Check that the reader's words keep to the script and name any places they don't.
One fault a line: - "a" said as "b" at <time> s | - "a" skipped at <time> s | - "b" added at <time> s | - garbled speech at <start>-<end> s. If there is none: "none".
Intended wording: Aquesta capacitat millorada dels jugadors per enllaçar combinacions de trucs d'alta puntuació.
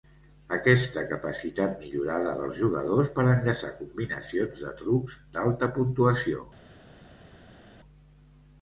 none